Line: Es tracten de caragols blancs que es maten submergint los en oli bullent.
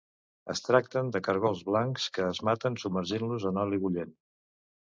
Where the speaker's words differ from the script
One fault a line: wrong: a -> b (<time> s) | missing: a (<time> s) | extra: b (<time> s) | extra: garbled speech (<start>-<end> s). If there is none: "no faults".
no faults